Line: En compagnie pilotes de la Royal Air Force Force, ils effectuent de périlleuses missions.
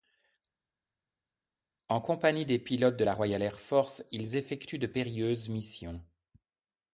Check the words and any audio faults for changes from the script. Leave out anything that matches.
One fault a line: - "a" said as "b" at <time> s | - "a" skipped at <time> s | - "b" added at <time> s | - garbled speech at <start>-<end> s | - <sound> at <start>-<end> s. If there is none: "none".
- "des" added at 2.5 s
- "Force" skipped at 4.0 s